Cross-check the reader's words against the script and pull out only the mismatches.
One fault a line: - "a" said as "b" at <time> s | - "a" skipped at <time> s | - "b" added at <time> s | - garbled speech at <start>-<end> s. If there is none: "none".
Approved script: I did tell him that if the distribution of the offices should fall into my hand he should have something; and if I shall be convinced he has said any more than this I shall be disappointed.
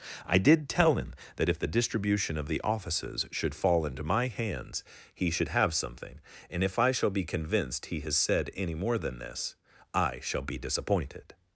- "hand" said as "hands" at 4.3 s